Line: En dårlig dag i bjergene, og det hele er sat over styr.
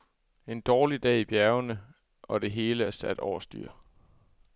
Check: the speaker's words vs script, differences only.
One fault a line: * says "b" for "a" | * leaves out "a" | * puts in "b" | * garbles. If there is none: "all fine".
all fine